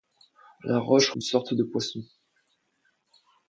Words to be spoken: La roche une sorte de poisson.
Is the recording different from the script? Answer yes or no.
no